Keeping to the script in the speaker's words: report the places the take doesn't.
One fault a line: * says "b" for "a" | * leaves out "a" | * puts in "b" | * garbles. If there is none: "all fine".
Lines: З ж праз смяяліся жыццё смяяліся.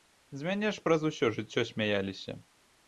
* puts in "мяне"
* says "усё" for "смяяліся"